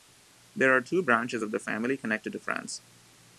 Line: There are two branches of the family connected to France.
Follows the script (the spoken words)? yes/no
yes